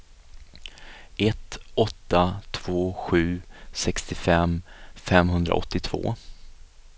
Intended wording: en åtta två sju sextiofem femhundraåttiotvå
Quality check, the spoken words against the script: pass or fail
fail